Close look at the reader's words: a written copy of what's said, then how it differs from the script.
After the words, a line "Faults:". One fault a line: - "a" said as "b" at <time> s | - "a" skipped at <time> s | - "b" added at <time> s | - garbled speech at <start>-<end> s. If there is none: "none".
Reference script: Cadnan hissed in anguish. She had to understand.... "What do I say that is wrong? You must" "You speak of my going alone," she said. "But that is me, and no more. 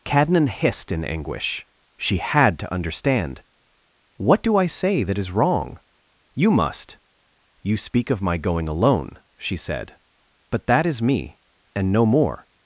Cadnan hissed in anguish. She had to understand.... "What do I say that is wrong? You must" "You speak of my going alone," she said. "But that is me, and no more.
Faults:
none